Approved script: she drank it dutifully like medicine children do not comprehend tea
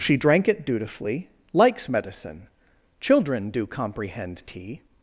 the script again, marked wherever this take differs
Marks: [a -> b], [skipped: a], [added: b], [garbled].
she drank it dutifully [like -> likes] medicine children do [skipped: not] comprehend tea